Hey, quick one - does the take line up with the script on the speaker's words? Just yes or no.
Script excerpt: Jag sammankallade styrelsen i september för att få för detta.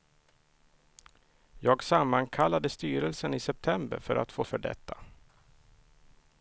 yes